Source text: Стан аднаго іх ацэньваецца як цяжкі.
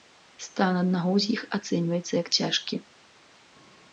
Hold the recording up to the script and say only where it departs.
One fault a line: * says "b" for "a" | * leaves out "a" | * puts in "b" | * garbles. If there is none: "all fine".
* puts in "з"